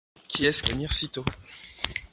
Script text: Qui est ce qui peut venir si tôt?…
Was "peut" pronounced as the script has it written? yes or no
no